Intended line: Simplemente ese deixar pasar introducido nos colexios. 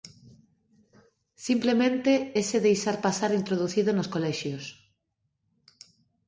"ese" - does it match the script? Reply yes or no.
yes